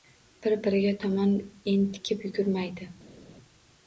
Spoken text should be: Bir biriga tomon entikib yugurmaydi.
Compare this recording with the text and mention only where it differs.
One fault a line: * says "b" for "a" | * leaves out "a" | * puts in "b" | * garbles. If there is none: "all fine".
all fine